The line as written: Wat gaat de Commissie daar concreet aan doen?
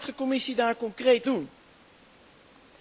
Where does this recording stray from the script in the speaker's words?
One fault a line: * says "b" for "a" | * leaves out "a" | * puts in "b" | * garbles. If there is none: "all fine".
* leaves out "gaat"
* leaves out "aan"